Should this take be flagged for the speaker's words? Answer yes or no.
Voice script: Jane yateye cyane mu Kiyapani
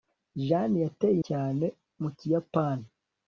no